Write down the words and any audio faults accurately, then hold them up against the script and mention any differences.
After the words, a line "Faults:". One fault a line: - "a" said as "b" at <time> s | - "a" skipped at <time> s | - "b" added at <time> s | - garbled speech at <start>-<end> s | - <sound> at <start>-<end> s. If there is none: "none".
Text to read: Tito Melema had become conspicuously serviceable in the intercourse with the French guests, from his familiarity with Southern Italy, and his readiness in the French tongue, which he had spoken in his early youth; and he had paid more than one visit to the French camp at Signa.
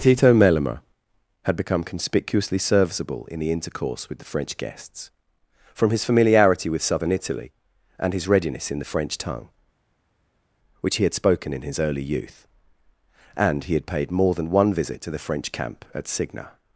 Tito Melema had become conspicuously serviceable in the intercourse with the French guests, from his familiarity with Southern Italy, and his readiness in the French tongue, which he had spoken in his early youth; and he had paid more than one visit to the French camp at Signa.
Faults:
none